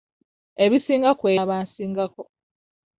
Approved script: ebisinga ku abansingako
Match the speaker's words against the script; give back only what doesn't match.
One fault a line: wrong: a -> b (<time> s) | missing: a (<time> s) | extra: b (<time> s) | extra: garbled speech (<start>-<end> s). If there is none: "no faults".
no faults